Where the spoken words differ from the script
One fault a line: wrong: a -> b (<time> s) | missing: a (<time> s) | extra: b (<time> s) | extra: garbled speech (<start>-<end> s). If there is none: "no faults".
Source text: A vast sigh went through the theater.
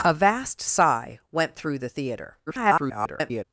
extra: garbled speech (2.5-3.4 s)